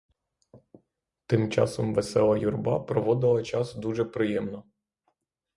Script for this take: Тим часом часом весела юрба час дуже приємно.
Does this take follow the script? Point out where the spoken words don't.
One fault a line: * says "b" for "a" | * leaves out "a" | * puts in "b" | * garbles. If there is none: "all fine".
* leaves out "часом"
* puts in "проводила"